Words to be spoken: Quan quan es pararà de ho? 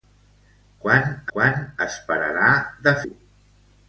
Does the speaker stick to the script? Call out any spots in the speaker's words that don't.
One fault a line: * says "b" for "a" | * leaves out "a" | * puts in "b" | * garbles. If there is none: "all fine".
all fine